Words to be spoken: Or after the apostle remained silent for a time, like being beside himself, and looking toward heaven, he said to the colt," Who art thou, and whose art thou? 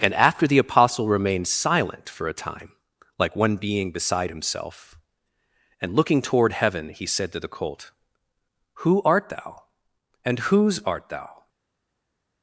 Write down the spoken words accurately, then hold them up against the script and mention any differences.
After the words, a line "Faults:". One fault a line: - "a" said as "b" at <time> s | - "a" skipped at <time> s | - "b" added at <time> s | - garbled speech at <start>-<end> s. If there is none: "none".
And after the apostle remained silent for a time, like one being beside himself, and looking toward heaven, he said to the colt," Who art thou, and whose art thou?
Faults:
- "Or" said as "And" at 0.0 s
- "one" added at 3.4 s